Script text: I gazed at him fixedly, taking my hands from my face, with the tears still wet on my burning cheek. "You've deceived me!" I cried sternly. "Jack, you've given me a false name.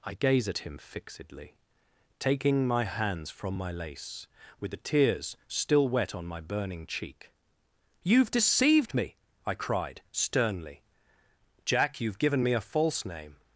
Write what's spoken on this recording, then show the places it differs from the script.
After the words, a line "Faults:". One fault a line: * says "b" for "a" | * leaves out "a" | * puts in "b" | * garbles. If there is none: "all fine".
I gaze at him fixedly, taking my hands from my lace, with the tears still wet on my burning cheek. "You've deceived me!" I cried sternly. "Jack, you've given me a false name.
Faults:
* says "gaze" for "gazed"
* says "lace" for "face"